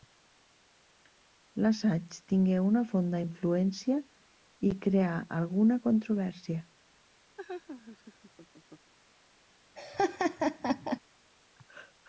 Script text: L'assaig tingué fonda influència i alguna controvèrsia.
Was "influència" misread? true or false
false